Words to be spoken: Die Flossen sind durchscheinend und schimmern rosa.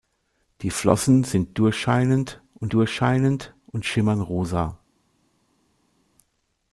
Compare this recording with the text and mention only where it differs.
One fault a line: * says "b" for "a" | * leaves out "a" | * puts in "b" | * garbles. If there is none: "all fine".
* puts in "durchscheinend und"